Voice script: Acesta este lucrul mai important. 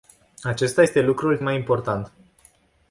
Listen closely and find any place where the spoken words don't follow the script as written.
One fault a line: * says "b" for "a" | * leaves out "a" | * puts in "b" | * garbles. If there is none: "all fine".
all fine